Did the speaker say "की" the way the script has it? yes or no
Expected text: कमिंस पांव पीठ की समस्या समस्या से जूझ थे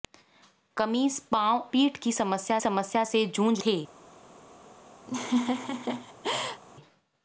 yes